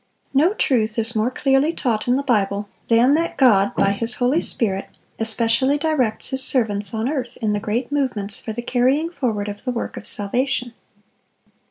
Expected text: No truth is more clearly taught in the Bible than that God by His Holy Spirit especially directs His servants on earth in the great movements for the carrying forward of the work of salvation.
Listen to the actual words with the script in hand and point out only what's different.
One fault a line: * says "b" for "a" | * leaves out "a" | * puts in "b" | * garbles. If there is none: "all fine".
all fine